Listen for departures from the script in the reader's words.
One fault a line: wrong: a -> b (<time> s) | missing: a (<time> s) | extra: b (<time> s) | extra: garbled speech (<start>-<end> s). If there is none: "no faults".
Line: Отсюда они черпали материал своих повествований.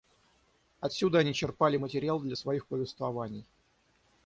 extra: для (2.2 s)